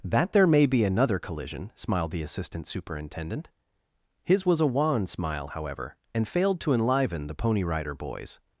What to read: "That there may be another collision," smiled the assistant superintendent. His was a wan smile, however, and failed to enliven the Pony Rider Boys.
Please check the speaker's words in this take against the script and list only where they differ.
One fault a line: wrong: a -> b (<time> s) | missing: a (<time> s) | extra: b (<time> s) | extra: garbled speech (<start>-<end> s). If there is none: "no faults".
no faults